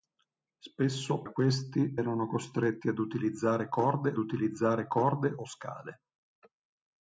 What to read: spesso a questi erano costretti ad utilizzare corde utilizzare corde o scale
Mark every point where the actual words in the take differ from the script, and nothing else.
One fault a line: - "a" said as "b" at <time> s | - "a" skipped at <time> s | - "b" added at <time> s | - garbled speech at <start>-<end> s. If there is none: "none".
none